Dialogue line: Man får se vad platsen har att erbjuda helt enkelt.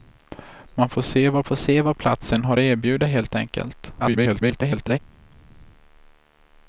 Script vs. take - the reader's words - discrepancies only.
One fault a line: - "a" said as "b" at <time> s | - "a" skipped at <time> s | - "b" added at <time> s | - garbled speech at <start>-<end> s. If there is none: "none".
- "får se vad" added at 1.4 s
- garbled speech at 4.0-5.0 s